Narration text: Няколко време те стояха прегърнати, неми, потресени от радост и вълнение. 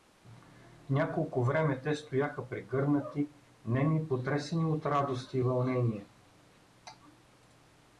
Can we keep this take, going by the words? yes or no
yes